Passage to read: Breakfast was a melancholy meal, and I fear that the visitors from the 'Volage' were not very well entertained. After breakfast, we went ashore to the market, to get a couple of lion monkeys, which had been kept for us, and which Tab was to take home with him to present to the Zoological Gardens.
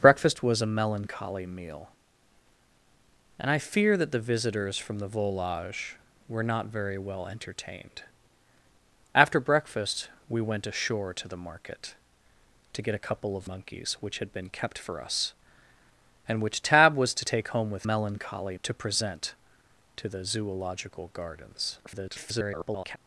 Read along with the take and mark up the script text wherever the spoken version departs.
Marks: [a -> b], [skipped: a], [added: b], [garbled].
Breakfast was a melancholy meal, and I fear that the visitors from the 'Volage' were not very well entertained. After breakfast, we went ashore to the market, to get a couple of [skipped: lion] monkeys, which had been kept for us, and which Tab was to take home with [him -> melancholy] to present to the Zoological Gardens. [garbled]